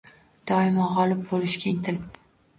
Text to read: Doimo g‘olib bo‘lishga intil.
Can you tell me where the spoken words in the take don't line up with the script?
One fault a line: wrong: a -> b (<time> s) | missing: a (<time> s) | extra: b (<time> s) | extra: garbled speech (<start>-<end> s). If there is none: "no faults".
no faults